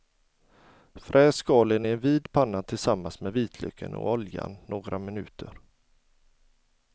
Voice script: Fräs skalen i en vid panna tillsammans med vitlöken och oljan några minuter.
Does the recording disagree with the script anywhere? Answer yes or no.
no